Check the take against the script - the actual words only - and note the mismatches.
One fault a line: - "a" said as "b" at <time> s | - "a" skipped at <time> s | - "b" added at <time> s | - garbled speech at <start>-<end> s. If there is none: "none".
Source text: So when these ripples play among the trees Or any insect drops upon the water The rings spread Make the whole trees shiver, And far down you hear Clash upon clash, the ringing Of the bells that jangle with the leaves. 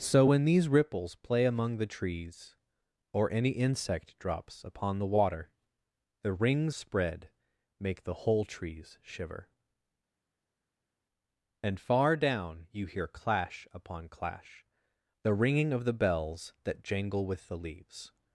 none